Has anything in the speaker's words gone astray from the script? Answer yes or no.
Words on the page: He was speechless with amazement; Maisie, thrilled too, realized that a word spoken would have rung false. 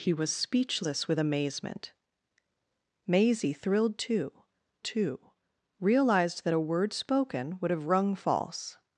yes